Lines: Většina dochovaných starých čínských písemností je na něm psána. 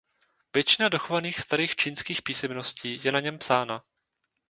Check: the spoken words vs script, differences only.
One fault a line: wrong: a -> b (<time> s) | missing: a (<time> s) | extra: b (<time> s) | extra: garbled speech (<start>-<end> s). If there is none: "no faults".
no faults